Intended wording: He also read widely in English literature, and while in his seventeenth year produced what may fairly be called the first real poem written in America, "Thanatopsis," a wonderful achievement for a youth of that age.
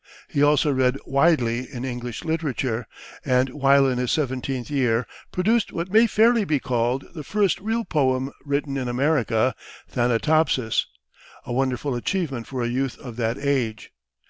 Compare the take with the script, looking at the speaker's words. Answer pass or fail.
pass